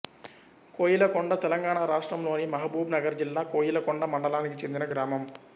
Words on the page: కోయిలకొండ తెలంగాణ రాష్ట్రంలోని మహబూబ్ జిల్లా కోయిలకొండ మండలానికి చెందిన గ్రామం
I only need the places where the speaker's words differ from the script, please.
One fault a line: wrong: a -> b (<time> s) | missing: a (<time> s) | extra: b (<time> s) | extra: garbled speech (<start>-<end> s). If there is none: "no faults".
extra: నగర్ (3.0 s)